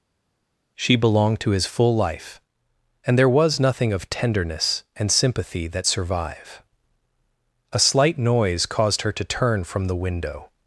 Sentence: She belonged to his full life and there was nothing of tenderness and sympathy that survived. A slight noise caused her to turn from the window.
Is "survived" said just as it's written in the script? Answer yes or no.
no